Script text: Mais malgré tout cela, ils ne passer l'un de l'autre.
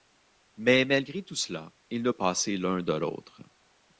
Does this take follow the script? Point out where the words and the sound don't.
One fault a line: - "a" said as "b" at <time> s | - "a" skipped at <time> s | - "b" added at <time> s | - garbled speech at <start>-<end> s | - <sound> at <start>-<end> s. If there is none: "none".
none